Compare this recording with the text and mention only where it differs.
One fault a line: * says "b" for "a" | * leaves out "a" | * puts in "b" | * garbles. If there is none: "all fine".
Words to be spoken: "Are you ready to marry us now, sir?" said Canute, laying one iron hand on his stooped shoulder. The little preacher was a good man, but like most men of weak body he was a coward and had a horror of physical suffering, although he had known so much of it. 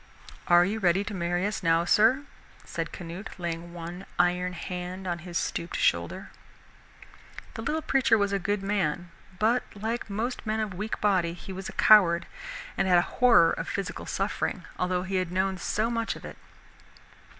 all fine